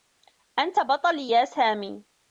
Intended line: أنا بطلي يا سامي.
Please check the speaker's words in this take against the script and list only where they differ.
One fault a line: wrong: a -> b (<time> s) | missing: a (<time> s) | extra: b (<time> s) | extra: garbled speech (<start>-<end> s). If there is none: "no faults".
wrong: أنا -> أنت (0.6 s)